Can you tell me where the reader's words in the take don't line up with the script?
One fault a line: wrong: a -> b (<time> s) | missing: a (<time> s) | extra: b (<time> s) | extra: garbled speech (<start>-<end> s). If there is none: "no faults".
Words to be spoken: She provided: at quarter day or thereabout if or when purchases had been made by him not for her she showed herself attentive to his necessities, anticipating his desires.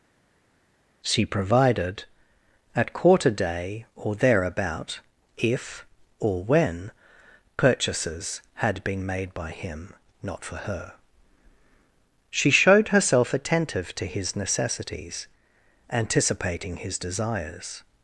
no faults